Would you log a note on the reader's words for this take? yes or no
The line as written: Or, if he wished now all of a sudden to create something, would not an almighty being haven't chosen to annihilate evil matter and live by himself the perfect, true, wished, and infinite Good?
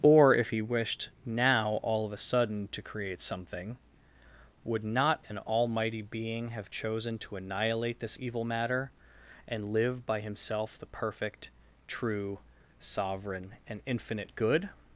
yes